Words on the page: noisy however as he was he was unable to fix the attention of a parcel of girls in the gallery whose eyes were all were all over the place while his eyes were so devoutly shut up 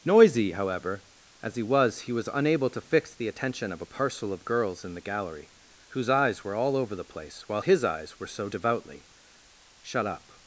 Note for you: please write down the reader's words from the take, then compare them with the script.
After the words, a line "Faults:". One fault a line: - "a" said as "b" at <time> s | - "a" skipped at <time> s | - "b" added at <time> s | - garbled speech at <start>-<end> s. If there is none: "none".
noisy however as he was he was unable to fix the attention of a parcel of girls in the gallery whose eyes were all over the place while his eyes were so devoutly shut up
Faults:
- "were all" skipped at 6.8 s